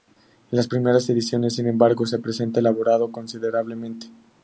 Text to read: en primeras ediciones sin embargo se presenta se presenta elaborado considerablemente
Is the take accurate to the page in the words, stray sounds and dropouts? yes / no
no